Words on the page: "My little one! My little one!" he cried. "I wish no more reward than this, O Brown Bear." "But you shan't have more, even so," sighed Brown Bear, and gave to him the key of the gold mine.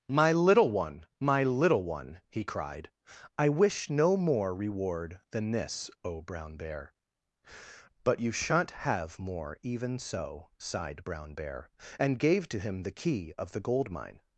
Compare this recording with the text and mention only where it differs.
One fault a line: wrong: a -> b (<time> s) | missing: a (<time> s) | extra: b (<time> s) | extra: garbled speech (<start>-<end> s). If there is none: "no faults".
no faults